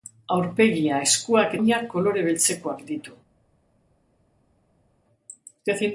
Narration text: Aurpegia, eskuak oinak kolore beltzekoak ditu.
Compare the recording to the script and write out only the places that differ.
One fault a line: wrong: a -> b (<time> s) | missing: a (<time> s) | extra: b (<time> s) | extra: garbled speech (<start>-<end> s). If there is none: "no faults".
no faults